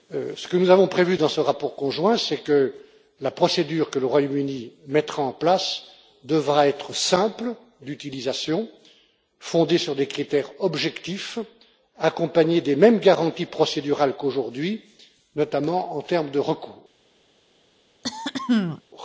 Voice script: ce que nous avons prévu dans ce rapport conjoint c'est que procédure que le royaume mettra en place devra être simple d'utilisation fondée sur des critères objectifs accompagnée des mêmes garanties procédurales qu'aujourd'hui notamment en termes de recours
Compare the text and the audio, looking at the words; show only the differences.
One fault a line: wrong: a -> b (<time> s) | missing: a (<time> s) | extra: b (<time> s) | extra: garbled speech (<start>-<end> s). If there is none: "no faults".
extra: la (3.2 s)
extra: uni (4.4 s)